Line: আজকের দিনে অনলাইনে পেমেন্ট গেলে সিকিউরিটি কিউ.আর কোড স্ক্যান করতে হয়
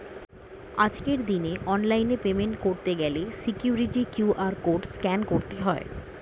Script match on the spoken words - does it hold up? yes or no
no